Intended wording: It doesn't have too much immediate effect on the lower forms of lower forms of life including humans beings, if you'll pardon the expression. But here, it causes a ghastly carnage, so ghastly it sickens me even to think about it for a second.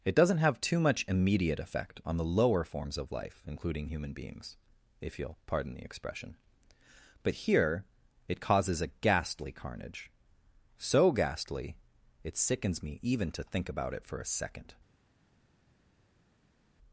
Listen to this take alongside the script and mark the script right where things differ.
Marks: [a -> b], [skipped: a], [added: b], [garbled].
It doesn't have too much immediate effect on the lower forms of [skipped: lower forms of] life including [humans -> human] beings, if you'll pardon the expression. But here, it causes a ghastly carnage, so ghastly it sickens me even to think about it for a second.